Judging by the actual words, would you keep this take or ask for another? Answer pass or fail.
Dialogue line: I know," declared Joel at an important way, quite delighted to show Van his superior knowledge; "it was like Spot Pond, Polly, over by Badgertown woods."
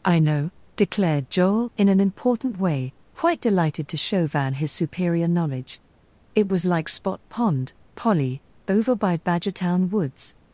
fail